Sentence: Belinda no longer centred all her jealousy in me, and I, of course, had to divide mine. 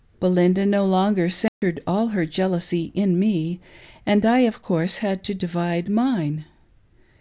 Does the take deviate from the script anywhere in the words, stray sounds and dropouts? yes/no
yes